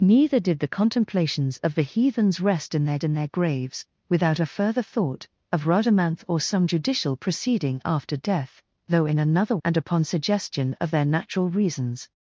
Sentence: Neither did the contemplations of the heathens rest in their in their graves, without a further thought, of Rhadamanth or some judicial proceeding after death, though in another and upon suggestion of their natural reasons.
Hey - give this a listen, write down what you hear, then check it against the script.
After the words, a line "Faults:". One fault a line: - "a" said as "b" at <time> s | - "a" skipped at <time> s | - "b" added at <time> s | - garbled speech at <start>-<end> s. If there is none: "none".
Neither did the contemplations of the heathens rest in their in their graves, without a further thought, of Rhadamanth or some judicial proceeding after death, though in another and upon suggestion of their natural reasons.
Faults:
none